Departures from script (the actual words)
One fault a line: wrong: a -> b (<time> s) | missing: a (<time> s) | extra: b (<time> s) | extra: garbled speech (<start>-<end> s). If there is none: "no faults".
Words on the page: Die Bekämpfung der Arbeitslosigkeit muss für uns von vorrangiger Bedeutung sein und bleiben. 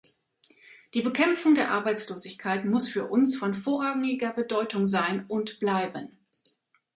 no faults